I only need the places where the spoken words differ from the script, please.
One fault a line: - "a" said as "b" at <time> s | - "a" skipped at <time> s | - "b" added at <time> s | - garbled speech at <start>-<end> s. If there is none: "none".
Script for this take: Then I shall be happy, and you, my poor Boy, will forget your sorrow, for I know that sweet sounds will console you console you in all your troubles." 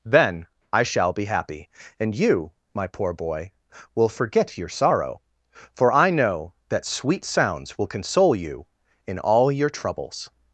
- "console you" skipped at 8.7 s